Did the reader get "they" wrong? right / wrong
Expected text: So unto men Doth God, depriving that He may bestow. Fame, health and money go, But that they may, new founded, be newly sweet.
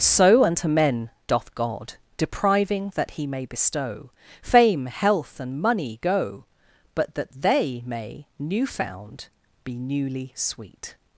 right